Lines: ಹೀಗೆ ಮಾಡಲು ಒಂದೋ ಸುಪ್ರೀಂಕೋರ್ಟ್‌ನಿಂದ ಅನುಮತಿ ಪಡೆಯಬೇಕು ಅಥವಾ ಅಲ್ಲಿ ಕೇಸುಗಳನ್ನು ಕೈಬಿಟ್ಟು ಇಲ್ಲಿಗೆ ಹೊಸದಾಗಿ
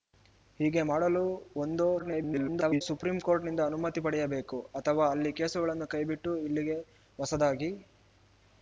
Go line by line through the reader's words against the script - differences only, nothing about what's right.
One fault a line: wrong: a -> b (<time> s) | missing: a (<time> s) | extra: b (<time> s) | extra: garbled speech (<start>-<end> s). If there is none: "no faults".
extra: garbled speech (2.0-2.8 s)